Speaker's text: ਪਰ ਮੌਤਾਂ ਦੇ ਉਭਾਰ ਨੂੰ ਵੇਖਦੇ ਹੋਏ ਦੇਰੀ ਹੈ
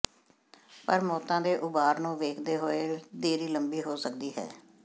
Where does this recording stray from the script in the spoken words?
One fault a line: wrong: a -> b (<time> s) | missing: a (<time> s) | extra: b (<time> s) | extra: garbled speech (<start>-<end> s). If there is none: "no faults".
extra: ਲੰਬੀ ਹੋ ਸਕਦੀ (3.5 s)